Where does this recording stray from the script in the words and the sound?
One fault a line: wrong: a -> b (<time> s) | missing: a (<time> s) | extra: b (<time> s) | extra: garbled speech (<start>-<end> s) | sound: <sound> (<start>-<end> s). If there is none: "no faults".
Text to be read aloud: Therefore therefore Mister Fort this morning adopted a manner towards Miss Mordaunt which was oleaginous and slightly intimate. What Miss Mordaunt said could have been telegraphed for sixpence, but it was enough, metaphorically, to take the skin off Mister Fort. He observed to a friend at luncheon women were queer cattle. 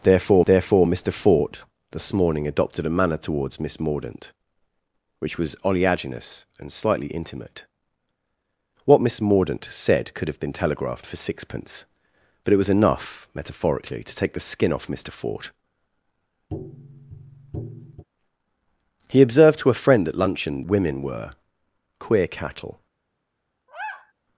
sound: tap (16.5-18.0 s)
sound: sigh (23.7-24.1 s)